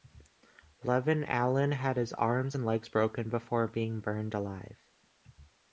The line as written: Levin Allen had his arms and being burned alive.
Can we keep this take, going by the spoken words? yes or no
no